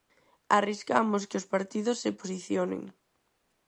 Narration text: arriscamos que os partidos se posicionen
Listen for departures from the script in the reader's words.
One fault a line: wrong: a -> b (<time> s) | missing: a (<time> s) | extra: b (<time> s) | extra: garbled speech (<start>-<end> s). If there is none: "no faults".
no faults